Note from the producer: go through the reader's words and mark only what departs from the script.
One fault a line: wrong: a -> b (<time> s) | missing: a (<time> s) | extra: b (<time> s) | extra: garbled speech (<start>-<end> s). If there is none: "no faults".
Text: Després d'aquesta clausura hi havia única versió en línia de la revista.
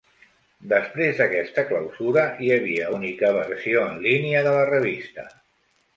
no faults